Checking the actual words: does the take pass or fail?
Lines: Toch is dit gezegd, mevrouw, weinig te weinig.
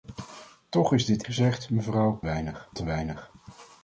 pass